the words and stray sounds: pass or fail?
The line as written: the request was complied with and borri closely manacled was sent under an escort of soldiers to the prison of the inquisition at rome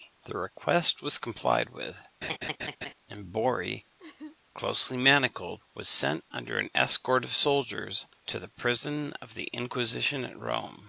fail